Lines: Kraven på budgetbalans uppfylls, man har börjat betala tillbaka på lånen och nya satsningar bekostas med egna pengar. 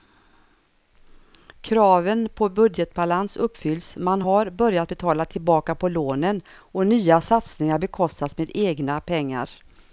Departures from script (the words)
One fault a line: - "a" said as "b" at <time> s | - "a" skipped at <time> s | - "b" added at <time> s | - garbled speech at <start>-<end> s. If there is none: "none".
none